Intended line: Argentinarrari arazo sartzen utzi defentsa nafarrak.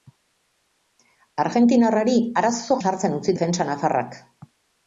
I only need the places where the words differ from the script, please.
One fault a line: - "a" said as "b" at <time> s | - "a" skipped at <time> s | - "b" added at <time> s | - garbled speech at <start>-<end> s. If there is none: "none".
none